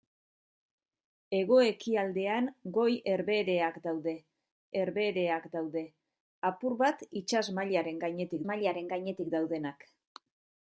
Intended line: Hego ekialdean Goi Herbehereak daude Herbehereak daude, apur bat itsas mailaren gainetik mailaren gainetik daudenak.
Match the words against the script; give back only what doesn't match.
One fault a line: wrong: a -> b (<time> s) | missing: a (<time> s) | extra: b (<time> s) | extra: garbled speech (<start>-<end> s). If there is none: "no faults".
no faults